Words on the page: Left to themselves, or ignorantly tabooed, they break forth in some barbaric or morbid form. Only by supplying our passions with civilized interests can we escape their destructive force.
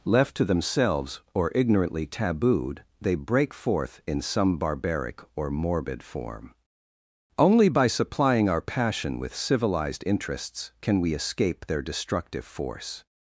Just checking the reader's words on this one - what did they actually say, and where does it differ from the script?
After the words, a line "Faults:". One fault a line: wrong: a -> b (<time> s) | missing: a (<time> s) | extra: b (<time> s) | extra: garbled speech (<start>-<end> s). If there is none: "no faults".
Left to themselves, or ignorantly tabooed, they break forth in some barbaric or morbid form. Only by supplying our passion with civilized interests can we escape their destructive force.
Faults:
wrong: passions -> passion (8.6 s)